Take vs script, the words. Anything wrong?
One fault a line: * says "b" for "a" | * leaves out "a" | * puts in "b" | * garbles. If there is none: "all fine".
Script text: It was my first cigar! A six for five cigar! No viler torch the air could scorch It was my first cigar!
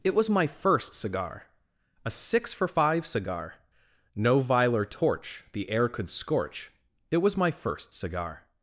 all fine